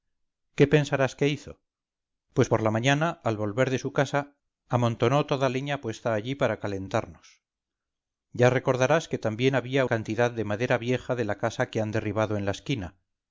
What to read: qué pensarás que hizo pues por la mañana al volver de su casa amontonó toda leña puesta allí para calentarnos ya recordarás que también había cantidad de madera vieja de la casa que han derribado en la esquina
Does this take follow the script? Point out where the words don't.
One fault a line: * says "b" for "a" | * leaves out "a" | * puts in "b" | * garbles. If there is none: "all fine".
all fine